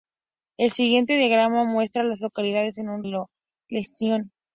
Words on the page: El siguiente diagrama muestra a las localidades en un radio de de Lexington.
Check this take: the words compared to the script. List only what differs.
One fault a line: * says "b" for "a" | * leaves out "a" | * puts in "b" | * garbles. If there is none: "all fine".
* leaves out "radio de"